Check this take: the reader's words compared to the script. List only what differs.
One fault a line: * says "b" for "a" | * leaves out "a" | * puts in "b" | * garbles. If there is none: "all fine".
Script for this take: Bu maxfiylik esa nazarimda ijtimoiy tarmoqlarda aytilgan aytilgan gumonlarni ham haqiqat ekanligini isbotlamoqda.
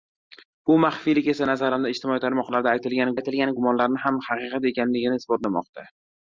all fine